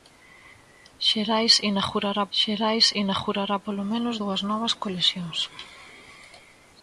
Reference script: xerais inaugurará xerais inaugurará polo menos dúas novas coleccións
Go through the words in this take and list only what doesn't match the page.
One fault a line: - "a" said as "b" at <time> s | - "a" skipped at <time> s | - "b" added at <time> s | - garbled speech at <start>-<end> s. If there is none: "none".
none